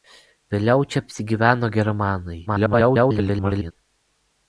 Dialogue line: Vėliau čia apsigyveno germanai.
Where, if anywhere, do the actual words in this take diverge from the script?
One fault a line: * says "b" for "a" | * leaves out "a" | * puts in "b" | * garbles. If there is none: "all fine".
* garbles